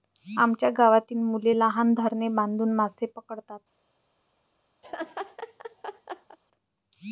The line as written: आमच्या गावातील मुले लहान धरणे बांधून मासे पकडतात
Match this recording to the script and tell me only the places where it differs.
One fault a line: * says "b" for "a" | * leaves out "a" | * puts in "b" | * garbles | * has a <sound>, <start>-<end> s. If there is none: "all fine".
* has a laugh, 4.8-6.4 s